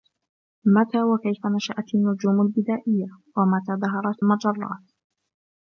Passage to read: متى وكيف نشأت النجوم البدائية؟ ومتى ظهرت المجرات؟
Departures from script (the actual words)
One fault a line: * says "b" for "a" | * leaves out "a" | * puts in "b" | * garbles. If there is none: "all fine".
all fine